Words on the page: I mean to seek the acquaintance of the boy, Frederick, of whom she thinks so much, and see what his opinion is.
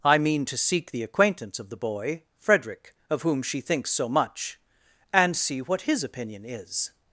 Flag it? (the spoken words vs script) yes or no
no